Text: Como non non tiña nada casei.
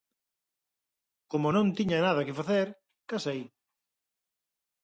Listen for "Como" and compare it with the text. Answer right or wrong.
right